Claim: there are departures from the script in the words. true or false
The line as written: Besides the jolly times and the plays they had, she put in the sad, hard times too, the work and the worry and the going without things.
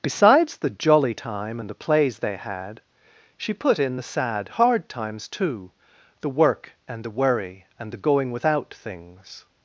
true